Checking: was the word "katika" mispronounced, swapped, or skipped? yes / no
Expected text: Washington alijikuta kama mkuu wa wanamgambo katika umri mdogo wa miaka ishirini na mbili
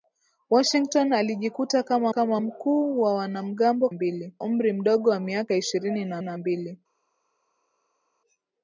yes